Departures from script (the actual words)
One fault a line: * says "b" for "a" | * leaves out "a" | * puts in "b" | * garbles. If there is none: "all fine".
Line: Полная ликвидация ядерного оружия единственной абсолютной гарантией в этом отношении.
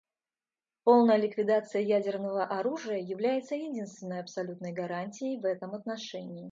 * puts in "является"